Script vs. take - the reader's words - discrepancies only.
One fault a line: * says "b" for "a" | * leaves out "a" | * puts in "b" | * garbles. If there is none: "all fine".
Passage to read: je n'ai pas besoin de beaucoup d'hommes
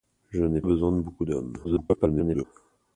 * leaves out "pas"
* garbles